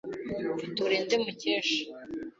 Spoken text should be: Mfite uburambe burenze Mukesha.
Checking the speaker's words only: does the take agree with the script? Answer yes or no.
no